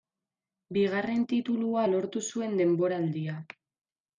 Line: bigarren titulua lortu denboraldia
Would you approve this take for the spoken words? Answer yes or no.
no